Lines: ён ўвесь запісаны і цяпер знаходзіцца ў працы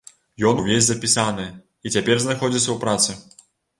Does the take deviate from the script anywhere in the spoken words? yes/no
no